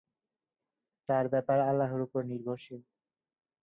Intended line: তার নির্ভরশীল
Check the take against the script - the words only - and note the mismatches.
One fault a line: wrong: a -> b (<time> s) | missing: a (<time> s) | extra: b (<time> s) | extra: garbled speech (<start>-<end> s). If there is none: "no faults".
extra: ব্যাপার আল্লাহর উপর (1.3 s)